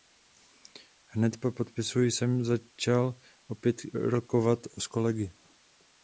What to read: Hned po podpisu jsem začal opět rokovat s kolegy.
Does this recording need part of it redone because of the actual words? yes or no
no